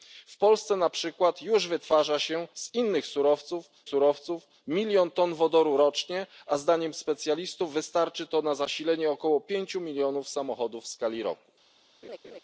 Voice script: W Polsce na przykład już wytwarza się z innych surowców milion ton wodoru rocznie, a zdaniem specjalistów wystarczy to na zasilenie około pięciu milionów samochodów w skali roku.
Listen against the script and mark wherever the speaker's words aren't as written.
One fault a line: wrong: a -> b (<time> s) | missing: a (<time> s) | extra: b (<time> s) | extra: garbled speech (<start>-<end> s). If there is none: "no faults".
extra: surowców (3.8 s)